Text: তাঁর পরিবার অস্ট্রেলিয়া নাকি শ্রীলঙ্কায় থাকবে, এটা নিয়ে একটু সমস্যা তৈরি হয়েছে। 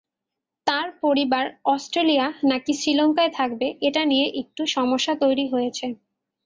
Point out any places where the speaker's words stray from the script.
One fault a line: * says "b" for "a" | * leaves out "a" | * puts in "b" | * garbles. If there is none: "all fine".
all fine